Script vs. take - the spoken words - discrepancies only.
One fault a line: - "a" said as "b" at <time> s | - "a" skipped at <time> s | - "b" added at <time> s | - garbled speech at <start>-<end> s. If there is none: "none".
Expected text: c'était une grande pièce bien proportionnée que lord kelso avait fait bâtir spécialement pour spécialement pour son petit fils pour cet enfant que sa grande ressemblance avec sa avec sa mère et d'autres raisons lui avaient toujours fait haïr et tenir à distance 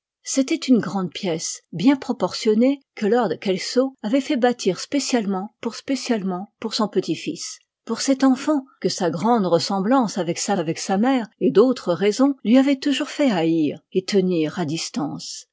none